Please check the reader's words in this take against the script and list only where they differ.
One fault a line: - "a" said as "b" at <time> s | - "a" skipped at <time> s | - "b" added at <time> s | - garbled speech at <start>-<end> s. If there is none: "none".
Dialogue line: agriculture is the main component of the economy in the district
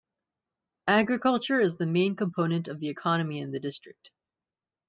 none